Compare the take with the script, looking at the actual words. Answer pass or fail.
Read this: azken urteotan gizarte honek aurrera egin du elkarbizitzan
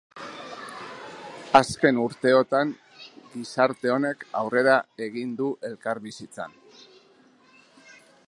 pass